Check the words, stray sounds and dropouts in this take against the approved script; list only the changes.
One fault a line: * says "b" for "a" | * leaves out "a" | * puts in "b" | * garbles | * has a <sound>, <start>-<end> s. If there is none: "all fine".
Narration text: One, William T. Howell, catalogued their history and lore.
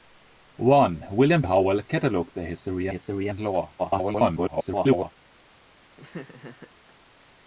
* leaves out "T"
* puts in "history"
* garbles
* has a laugh, 5.9-6.7 s